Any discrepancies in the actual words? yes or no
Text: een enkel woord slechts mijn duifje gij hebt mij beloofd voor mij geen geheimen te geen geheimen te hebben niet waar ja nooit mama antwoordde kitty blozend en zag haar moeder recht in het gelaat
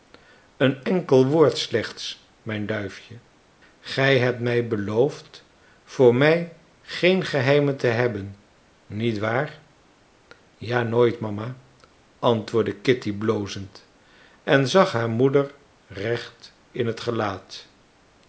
yes